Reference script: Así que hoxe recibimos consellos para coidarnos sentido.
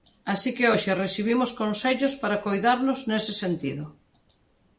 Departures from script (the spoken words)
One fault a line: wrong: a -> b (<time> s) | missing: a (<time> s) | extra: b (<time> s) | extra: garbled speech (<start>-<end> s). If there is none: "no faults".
extra: nese (3.1 s)